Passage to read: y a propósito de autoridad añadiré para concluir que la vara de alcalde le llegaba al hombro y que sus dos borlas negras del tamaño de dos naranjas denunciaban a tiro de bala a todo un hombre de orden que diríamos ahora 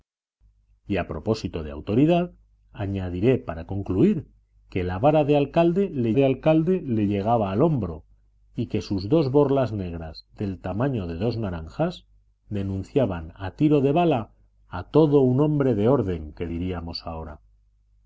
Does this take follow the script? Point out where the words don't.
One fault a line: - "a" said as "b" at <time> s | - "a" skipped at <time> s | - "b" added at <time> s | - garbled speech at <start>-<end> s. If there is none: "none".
- "de alcalde le" added at 6.1 s